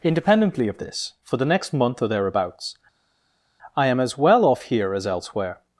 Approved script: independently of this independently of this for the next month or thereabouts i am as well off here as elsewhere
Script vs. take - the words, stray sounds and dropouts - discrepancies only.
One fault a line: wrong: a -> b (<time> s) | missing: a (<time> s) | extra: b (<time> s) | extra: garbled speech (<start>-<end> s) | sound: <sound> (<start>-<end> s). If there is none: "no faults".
missing: independently of this (1.1 s)